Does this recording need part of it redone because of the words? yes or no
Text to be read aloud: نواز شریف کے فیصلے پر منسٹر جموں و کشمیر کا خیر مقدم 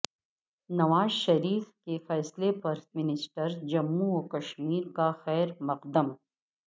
no